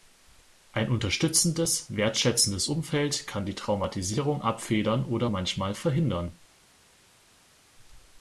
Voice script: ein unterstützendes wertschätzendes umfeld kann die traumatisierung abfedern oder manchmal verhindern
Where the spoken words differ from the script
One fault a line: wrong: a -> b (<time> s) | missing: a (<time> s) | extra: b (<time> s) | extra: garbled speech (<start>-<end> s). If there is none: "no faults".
no faults